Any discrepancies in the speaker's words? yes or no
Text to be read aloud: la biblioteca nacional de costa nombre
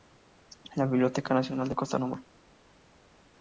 no